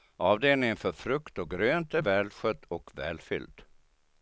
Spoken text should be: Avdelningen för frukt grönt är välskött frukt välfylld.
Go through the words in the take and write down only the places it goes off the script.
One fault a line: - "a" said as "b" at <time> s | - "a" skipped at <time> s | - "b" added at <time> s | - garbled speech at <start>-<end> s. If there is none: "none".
- "och" added at 1.4 s
- "frukt" said as "och" at 2.7 s